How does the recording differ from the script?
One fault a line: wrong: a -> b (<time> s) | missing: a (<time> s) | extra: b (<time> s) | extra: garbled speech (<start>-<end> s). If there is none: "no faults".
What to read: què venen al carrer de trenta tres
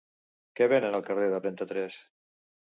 no faults